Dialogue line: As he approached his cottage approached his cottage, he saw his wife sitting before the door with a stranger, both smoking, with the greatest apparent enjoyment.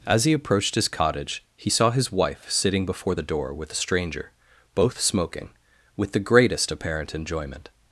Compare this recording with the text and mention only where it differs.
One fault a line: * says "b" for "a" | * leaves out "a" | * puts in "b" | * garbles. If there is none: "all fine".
* leaves out "approached his cottage"